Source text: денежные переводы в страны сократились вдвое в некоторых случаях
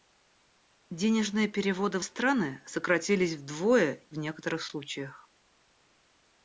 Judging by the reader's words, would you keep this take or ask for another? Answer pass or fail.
pass